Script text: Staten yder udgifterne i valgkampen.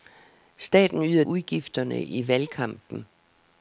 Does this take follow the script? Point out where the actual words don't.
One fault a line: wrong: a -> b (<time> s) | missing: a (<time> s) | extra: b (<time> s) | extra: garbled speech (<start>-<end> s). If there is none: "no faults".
no faults